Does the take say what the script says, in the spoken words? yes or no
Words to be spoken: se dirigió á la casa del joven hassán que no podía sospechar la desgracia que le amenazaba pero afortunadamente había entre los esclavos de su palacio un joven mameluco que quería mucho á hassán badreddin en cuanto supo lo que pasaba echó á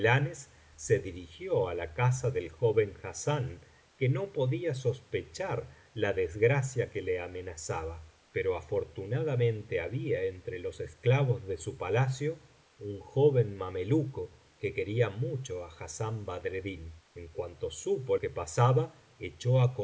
no